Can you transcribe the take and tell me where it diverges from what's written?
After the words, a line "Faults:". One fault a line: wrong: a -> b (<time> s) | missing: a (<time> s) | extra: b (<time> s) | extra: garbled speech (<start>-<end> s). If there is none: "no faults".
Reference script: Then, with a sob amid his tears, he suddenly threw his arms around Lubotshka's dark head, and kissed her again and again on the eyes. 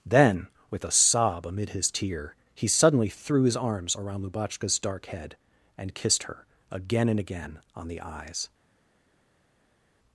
Then, with a sob amid his tear, he suddenly threw his arms around Lubotshka's dark head, and kissed her again and again on the eyes.
Faults:
wrong: tears -> tear (1.9 s)